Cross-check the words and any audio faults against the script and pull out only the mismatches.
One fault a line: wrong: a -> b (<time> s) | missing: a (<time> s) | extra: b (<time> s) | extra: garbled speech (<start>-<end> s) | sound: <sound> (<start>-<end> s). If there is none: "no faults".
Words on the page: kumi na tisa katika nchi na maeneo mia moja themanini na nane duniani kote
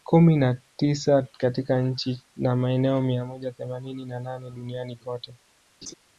sound: laugh (5.8-5.9 s)